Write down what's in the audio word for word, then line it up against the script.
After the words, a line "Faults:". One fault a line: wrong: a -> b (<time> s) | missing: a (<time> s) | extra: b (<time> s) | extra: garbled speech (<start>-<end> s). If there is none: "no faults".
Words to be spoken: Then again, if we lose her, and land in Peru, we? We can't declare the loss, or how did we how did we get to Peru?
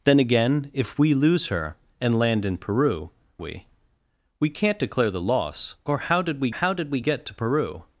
Then again, if we lose her, and land in Peru, we? We can't declare the loss, or how did we how did we get to Peru?
Faults:
no faults